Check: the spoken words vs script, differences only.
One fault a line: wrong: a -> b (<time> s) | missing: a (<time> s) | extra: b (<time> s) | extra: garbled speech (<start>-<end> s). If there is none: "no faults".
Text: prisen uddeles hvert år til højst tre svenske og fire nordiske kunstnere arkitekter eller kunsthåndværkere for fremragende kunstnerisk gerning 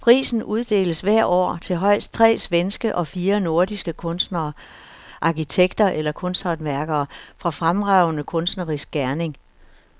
no faults